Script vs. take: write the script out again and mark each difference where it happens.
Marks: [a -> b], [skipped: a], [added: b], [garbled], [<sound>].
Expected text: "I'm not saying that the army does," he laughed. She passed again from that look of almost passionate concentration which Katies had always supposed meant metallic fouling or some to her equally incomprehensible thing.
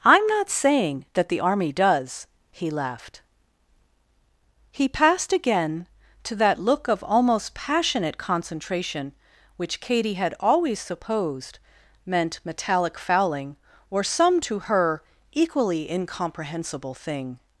"I'm not saying that the army does," he laughed. [She -> He] passed again [from -> to] that look of almost passionate concentration which [Katies -> Katie] had always supposed meant metallic fouling or some to her equally incomprehensible thing.